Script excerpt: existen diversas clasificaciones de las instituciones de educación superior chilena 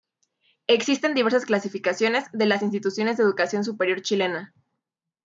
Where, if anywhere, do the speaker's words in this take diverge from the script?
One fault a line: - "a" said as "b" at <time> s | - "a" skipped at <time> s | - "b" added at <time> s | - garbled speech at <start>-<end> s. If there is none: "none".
none